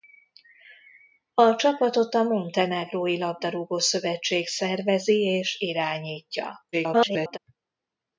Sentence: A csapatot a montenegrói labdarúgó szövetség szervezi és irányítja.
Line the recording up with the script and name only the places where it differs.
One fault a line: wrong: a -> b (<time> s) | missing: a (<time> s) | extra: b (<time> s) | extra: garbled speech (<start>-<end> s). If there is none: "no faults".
extra: garbled speech (6.7-7.4 s)